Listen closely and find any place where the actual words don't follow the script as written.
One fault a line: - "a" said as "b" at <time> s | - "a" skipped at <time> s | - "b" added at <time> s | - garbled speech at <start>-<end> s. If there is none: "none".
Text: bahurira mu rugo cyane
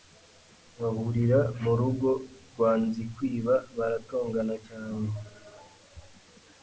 - "rwa Nzikwiba baratongana" added at 2.5 s